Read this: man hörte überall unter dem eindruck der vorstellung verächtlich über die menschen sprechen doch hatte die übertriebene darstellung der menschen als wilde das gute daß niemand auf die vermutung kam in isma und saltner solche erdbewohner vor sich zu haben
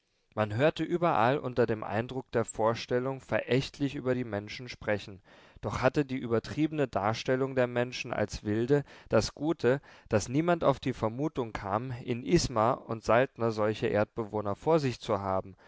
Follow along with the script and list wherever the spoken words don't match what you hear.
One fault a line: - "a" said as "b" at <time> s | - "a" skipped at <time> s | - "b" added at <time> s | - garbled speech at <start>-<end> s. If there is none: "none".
none